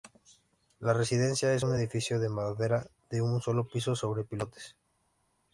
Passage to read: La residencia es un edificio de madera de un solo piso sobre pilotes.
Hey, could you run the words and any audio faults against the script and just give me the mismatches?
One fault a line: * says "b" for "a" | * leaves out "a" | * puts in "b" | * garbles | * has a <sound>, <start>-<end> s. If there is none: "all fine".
all fine